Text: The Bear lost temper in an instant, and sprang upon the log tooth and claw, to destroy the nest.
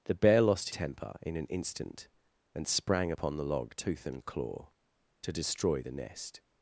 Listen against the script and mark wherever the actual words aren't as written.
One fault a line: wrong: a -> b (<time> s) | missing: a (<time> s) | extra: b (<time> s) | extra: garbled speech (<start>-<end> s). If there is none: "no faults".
no faults